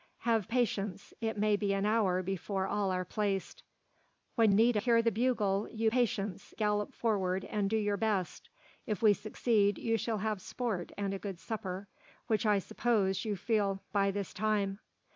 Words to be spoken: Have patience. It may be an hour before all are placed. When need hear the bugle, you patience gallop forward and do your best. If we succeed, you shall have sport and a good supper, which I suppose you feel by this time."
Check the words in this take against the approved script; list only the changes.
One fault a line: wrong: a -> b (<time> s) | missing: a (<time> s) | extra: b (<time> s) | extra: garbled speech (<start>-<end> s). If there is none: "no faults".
no faults